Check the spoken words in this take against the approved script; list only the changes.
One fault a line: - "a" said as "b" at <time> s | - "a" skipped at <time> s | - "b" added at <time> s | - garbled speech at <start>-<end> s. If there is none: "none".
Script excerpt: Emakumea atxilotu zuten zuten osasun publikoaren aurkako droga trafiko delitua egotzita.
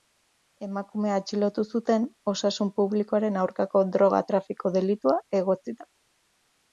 - "zuten" skipped at 2.1 s